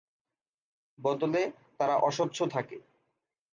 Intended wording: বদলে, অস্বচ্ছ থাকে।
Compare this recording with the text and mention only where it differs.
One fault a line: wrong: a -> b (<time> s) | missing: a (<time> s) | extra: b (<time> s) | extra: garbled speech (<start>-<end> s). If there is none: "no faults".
extra: তারা (1.8 s)